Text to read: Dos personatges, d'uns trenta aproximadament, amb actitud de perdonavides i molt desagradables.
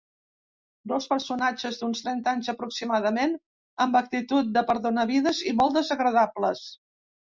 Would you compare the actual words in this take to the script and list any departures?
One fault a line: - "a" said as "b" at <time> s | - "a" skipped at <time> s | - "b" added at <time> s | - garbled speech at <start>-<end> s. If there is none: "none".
- "anys" added at 2.4 s